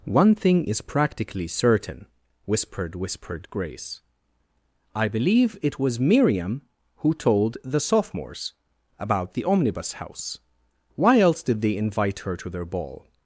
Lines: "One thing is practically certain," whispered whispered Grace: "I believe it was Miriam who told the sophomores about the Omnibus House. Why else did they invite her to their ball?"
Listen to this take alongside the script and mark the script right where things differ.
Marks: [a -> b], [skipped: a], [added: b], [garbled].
"One thing is practically certain," whispered whispered Grace: "I believe it was Miriam who told the sophomores about the Omnibus House. Why else did they invite her to their ball?"